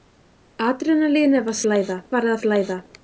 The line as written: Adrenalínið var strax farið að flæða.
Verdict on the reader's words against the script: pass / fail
fail